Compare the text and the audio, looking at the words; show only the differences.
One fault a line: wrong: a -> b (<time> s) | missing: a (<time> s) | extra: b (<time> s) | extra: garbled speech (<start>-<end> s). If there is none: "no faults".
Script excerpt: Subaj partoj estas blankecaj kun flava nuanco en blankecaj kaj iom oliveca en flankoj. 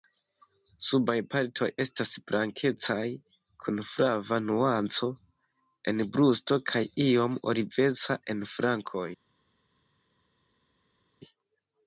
wrong: blankecaj -> brusto (6.1 s)